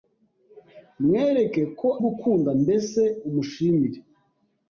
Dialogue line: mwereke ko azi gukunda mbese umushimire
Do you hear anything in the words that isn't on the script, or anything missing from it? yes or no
yes